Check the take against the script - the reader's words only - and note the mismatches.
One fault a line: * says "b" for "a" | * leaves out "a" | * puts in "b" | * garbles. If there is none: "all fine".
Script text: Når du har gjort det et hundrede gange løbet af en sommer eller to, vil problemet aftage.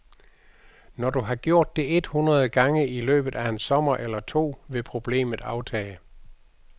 * puts in "i"